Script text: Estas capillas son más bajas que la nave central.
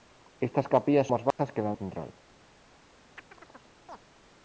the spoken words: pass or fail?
fail